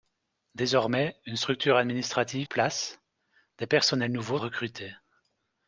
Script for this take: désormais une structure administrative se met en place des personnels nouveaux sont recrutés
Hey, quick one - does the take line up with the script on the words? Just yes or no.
no